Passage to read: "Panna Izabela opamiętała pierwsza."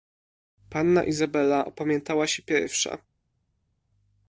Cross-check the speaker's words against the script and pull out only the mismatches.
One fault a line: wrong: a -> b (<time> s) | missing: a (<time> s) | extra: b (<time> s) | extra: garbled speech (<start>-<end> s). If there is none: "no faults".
extra: się (2.3 s)